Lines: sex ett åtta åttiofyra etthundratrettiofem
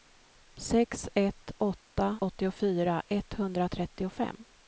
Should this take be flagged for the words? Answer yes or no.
no